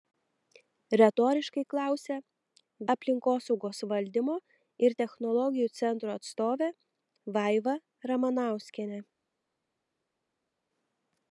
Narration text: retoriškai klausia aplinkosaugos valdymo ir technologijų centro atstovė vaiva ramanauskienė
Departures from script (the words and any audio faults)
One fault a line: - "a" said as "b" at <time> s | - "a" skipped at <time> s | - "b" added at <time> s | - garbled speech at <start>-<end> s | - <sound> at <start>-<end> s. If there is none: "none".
none